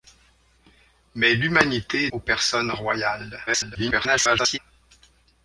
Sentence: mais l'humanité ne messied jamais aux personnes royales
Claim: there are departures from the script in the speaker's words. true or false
true